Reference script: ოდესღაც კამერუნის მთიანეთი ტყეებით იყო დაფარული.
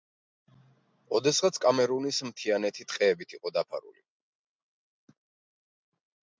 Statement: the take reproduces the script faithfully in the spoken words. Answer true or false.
true